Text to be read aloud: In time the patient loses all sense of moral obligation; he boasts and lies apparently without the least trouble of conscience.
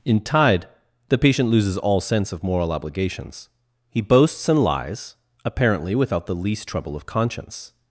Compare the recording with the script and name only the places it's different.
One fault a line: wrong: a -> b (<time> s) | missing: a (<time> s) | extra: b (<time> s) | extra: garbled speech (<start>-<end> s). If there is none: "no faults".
wrong: time -> tide (0.2 s)
wrong: obligation -> obligations (2.7 s)